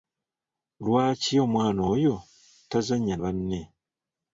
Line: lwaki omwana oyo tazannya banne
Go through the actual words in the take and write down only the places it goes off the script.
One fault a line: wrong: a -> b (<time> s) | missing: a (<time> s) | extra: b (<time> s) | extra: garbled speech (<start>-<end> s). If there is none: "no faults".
no faults